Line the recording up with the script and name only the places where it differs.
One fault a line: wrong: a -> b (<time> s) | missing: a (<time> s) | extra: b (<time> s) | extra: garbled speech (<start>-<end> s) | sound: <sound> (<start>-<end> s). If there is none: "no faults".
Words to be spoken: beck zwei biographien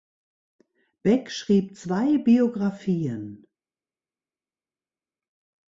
extra: schrieb (1.3 s)